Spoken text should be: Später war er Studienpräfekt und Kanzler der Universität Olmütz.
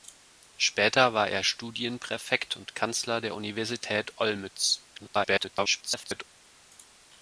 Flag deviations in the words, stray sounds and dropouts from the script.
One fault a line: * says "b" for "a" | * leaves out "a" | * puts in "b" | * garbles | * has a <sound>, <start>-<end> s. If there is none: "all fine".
* garbles